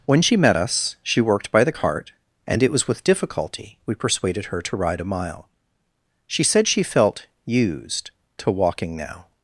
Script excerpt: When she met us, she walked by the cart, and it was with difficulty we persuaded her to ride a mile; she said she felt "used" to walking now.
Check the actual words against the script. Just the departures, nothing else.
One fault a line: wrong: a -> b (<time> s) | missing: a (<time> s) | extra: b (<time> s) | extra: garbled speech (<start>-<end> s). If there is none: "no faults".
wrong: walked -> worked (1.2 s)